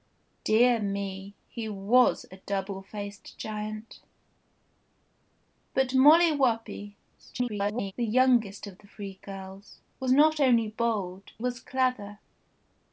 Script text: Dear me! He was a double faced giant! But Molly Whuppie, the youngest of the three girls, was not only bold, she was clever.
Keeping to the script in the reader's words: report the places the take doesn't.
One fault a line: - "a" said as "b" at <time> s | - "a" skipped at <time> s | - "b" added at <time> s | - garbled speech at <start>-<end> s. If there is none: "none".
- garbled speech at 7.2-7.9 s
- "she" skipped at 11.3 s